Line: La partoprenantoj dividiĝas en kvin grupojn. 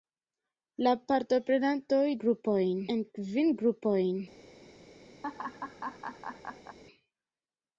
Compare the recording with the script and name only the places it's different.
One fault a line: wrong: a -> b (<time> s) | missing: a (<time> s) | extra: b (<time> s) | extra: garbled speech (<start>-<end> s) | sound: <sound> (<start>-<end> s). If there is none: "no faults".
wrong: dividiĝas -> grupojn (2.3 s)
sound: laugh (5.2-6.8 s)